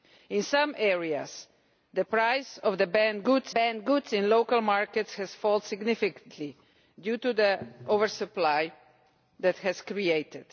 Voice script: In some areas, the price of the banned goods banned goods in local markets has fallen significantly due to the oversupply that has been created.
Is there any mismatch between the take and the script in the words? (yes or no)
no